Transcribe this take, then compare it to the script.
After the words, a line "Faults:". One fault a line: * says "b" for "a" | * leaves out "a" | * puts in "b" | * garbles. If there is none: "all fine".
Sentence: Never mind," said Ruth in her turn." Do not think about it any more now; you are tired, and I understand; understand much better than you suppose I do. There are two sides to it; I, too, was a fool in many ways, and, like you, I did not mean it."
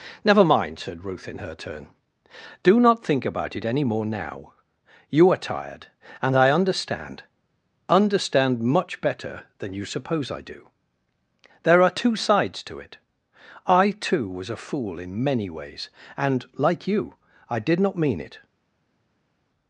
Never mind," said Ruth in her turn." Do not think about it any more now; you are tired, and I understand; understand much better than you suppose I do. There are two sides to it; I, too, was a fool in many ways, and, like you, I did not mean it."
Faults:
all fine